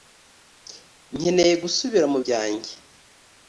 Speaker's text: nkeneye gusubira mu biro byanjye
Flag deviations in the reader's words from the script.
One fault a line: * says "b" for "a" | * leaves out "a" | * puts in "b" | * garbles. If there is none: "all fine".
* leaves out "biro"